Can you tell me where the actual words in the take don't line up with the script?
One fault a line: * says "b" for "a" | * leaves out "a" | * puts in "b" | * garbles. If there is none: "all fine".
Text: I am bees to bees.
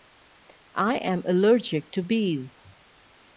* says "allergic" for "bees"